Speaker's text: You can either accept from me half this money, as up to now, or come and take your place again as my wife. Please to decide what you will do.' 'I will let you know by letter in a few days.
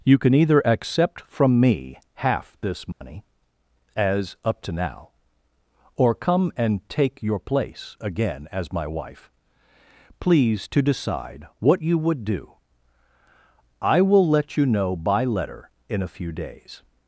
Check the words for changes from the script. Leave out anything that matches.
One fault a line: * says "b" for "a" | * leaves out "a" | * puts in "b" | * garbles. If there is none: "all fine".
* says "would" for "will"